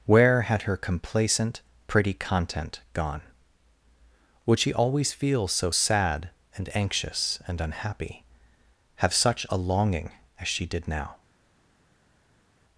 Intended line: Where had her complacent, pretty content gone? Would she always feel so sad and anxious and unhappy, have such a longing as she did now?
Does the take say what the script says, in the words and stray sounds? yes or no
yes